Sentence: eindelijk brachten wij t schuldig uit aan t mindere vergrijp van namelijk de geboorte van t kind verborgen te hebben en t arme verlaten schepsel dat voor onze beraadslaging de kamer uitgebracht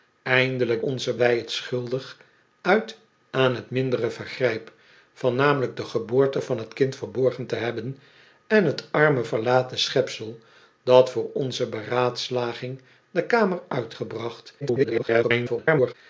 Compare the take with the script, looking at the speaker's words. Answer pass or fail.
fail